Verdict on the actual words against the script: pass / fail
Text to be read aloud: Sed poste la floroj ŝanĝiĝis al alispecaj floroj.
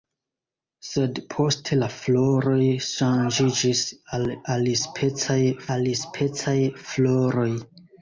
fail